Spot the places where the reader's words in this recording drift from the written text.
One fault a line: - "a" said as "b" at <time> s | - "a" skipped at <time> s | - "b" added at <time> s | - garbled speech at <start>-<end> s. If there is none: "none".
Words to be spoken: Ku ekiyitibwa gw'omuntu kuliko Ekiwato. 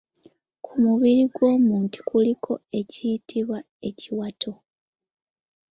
- "ekiyitibwa" said as "mubiri" at 0.8 s
- "ekiyitibwa" added at 2.8 s